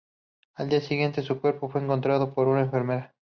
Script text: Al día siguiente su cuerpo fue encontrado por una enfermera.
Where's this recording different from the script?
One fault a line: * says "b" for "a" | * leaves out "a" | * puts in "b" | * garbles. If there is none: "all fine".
all fine